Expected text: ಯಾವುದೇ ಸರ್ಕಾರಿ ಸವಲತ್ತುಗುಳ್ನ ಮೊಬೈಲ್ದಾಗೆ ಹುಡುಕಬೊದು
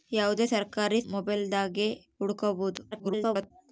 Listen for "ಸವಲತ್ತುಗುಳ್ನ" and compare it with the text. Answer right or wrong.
wrong